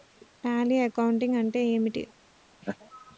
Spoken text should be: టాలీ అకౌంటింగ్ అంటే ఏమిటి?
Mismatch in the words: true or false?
false